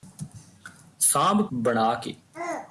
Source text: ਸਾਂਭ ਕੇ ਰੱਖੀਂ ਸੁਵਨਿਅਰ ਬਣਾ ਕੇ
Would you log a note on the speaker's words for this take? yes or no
yes